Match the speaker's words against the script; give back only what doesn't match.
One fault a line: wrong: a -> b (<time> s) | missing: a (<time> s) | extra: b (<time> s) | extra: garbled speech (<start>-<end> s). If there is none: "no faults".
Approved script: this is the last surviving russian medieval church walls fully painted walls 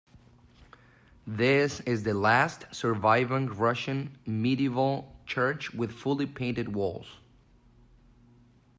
wrong: walls -> with (5.7 s)